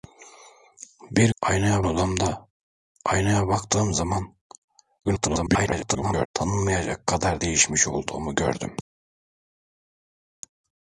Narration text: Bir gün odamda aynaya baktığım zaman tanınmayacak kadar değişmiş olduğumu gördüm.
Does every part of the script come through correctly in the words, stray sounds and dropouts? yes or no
no